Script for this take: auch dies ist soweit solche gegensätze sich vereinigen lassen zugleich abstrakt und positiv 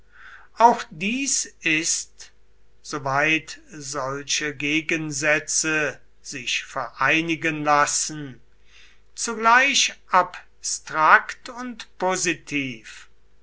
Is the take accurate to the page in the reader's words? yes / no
yes